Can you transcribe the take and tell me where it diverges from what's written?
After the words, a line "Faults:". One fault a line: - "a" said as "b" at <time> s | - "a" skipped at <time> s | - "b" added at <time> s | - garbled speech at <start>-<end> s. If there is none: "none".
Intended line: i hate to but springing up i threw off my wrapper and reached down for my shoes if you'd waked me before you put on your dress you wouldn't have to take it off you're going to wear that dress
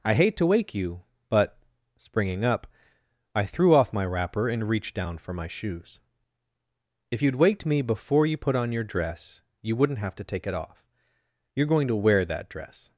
i hate to wake you but springing up i threw off my wrapper and reached down for my shoes if you'd waked me before you put on your dress you wouldn't have to take it off you're going to wear that dress
Faults:
- "wake you" added at 0.5 s